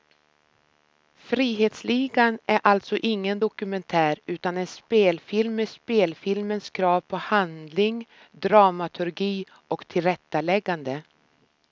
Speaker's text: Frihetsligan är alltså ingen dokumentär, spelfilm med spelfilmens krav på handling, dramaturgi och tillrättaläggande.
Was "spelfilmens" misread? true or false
false